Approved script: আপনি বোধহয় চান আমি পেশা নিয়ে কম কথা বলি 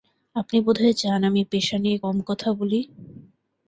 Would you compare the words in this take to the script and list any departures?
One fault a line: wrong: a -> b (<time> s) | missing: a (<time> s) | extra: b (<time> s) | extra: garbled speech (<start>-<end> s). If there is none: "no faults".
no faults